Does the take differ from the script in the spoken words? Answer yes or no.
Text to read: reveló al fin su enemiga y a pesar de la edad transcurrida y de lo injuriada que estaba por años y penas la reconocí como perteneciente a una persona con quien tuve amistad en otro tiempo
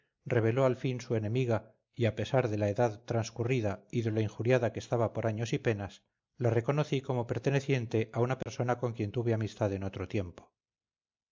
no